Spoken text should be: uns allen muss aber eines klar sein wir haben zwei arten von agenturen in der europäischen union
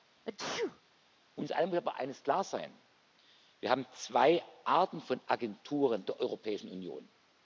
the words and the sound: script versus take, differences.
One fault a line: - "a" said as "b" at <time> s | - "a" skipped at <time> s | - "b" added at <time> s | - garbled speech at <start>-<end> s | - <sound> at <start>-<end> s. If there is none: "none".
- sneeze at 0.2-0.8 s
- "in" skipped at 6.0 s